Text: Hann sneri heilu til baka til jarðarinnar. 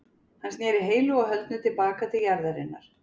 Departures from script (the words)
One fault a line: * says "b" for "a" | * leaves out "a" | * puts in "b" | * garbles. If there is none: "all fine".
* puts in "og höldnu"